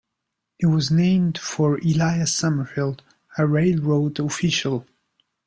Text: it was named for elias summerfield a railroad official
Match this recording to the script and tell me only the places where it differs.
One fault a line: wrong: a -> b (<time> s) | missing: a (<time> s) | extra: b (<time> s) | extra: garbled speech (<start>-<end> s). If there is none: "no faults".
no faults